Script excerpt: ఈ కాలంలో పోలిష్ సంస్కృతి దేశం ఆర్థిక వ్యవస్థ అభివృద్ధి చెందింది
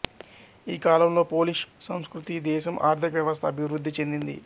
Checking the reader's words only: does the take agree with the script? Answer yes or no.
yes